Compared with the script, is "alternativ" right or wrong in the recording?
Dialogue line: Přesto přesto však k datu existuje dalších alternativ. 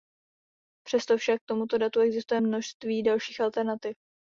right